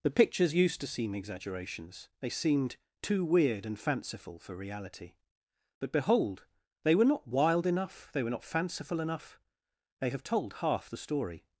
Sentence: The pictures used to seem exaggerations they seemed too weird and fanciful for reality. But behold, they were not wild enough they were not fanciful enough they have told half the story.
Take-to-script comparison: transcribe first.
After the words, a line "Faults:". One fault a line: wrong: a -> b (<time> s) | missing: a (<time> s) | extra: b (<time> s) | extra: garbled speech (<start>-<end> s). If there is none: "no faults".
The pictures used to seem exaggerations they seemed too weird and fanciful for reality. But behold, they were not wild enough they were not fanciful enough they have told half the story.
Faults:
no faults